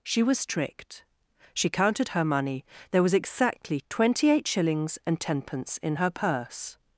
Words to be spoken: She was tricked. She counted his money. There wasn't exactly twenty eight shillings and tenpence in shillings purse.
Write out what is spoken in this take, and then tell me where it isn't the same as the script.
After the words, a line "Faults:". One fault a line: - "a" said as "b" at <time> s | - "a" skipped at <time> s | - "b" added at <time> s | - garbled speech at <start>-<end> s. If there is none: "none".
She was tricked. She counted her money. There was exactly twenty eight shillings and tenpence in her purse.
Faults:
- "his" said as "her" at 2.1 s
- "wasn't" said as "was" at 3.0 s
- "shillings" said as "her" at 5.9 s